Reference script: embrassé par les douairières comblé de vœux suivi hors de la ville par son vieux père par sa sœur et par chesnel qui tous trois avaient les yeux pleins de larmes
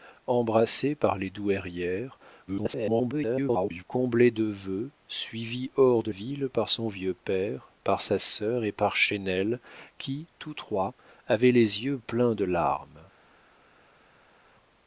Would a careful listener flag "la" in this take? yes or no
yes